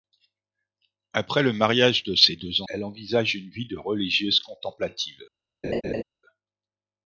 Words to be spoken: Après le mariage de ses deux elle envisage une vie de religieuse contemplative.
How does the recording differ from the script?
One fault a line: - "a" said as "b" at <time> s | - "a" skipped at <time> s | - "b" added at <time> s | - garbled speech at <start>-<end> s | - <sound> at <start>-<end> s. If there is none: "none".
- laugh at 5.6-6.0 s